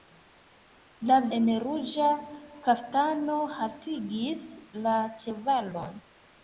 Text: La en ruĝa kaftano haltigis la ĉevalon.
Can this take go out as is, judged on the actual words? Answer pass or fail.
pass